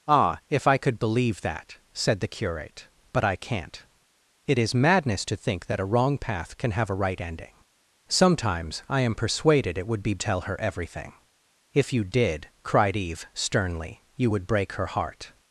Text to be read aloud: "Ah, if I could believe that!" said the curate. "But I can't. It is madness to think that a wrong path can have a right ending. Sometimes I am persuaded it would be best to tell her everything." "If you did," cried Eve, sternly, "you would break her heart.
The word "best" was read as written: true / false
false